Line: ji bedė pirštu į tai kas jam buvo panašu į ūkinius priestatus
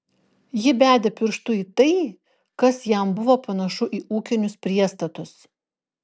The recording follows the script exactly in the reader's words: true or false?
true